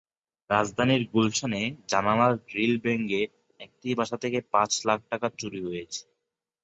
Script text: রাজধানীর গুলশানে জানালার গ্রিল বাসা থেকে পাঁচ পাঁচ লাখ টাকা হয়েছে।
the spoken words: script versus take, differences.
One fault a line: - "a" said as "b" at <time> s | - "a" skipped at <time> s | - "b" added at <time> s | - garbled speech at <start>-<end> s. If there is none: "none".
- "ভেঙে একটি" added at 2.8 s
- "পাঁচ" skipped at 4.7 s
- "চুরি" added at 5.4 s